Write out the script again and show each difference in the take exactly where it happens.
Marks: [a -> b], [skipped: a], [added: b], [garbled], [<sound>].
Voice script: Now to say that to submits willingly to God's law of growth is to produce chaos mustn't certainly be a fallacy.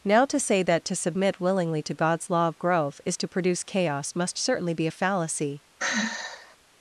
Now to say that to [submits -> submit] willingly to God's law of growth is to produce chaos [mustn't -> must] certainly be a fallacy. [sigh]